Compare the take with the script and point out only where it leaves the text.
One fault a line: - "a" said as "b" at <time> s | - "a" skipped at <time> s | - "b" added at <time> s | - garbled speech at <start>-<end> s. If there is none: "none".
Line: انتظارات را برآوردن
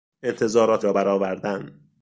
none